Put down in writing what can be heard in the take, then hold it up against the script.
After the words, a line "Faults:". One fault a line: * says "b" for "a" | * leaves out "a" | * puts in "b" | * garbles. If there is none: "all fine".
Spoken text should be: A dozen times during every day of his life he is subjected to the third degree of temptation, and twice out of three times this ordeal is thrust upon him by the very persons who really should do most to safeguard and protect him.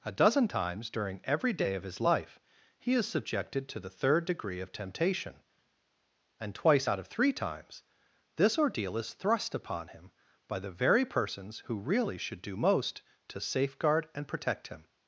A dozen times during every day of his life he is subjected to the third degree of temptation, and twice out of three times this ordeal is thrust upon him by the very persons who really should do most to safeguard and protect him.
Faults:
all fine